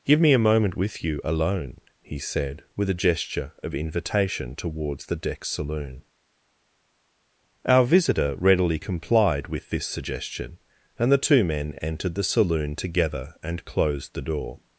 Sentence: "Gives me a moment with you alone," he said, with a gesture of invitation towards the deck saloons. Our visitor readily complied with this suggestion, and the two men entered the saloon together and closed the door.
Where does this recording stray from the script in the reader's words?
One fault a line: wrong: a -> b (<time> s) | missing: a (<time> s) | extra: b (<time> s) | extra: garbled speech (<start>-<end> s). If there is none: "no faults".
wrong: Gives -> Give (0.1 s)
wrong: saloons -> saloon (5.5 s)